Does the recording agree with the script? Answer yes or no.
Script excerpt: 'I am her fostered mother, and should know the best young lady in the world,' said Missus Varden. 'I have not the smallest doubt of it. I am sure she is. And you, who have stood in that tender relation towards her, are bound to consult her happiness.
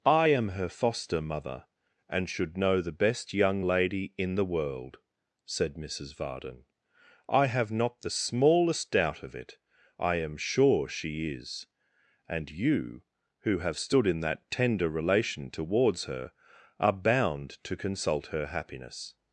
no